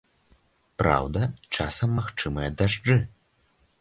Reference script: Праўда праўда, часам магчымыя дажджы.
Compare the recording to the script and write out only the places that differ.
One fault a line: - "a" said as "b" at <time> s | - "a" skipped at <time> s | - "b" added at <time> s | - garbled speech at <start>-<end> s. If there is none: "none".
- "праўда" skipped at 1.2 s